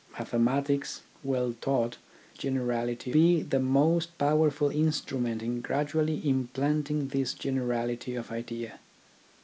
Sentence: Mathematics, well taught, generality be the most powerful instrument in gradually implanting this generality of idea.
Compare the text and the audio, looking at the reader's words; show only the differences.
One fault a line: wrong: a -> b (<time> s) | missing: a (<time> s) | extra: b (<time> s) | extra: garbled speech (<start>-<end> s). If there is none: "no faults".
no faults